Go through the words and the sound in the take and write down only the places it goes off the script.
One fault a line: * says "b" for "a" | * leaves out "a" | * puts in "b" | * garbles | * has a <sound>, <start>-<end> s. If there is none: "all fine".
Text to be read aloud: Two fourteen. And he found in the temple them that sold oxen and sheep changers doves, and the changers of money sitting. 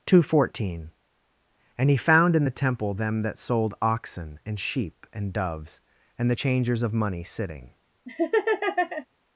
* says "and" for "changers"
* has a laugh, 8.1-9.1 s